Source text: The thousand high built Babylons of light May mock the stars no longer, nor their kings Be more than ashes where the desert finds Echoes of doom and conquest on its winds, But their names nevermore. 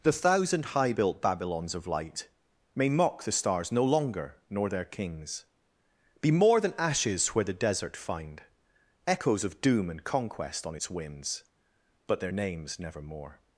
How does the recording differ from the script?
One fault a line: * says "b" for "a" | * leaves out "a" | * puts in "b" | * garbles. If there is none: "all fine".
* says "find" for "finds"